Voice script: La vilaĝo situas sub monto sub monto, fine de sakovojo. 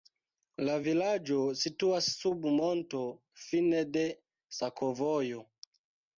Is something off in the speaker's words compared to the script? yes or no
yes